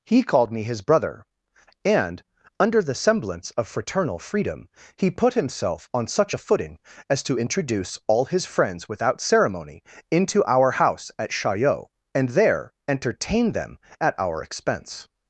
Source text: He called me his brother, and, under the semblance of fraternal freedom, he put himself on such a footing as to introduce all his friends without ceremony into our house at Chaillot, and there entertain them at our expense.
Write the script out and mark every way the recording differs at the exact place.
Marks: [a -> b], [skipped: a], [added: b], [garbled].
He called me his brother, and, under the semblance of fraternal freedom, he put himself on such a footing as to introduce all his friends without ceremony into our house at Chaillot, and there entertain them at our expense.